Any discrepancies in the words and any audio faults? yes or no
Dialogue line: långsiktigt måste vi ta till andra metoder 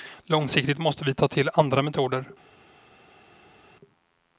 no